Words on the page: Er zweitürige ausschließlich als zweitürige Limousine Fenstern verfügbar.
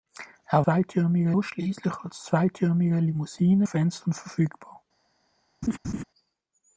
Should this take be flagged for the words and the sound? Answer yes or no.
yes